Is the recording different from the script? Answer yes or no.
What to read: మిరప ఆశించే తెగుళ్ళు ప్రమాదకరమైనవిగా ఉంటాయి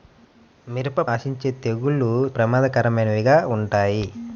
no